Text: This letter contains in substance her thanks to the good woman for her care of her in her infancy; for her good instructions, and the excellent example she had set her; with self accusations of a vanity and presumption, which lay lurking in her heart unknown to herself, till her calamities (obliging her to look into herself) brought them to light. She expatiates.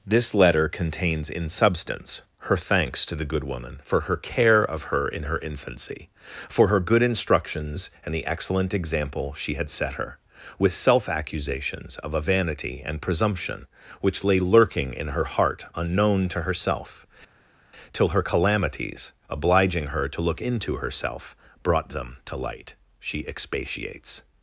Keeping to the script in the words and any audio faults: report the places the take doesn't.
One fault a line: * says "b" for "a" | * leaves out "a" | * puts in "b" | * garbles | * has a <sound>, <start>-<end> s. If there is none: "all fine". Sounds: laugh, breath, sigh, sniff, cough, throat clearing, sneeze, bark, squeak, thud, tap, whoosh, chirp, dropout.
all fine